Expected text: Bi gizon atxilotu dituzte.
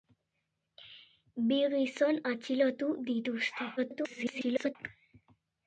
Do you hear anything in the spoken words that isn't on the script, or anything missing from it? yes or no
yes